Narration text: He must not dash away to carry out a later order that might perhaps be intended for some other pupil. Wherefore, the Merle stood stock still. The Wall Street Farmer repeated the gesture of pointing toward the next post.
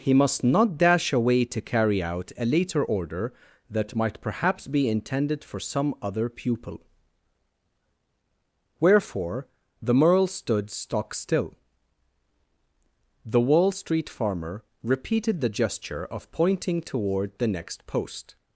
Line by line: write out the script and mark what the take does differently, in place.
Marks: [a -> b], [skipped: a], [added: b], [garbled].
He must not dash away to carry out a later order that might perhaps be intended for some other pupil. Wherefore, the Merle stood stock still. The Wall Street Farmer repeated the gesture of pointing toward the next post.